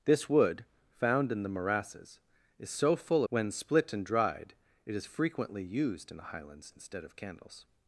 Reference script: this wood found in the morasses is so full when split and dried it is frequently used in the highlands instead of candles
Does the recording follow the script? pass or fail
pass